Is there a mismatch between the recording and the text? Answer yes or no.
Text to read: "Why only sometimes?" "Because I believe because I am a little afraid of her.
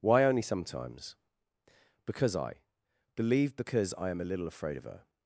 no